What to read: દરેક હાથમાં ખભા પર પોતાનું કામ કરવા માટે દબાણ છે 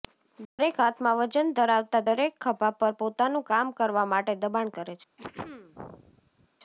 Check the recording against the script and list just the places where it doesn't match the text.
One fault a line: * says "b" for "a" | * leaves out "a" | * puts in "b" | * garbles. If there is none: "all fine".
* puts in "વજન ધરાવતા દરેક"
* puts in "કરે"